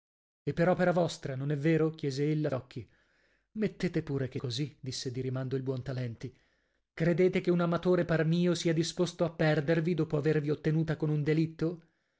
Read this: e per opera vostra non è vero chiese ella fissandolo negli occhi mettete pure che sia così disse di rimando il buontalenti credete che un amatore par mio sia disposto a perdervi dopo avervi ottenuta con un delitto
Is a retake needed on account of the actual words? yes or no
yes